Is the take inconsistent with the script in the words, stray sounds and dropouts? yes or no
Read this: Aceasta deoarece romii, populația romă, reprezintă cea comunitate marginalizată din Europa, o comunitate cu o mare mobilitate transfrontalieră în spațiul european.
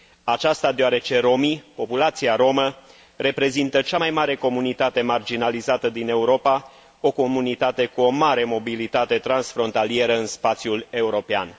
yes